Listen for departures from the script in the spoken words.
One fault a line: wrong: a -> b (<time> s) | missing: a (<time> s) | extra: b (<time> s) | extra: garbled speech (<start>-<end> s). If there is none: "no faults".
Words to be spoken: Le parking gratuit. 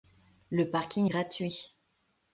no faults